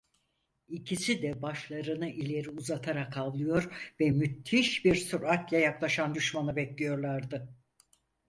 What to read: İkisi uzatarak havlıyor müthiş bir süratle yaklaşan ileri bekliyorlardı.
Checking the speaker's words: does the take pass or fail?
fail